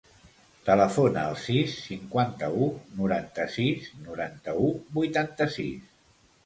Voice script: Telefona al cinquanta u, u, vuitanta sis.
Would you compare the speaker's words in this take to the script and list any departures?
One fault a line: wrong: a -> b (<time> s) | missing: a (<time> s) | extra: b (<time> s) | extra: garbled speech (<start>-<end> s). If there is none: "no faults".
extra: sis (1.4 s)
extra: noranta sis noranta (3.0 s)